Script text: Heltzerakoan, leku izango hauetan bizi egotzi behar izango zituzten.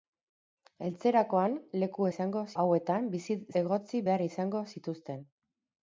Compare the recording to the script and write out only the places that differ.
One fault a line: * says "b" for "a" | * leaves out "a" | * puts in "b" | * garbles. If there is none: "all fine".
all fine